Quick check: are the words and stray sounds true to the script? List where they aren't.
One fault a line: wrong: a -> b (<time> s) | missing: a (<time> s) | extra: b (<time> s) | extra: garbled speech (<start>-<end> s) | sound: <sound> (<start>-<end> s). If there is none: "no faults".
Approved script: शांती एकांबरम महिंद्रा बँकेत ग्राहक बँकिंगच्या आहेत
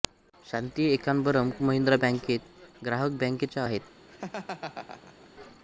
sound: laugh (4.1-5.3 s)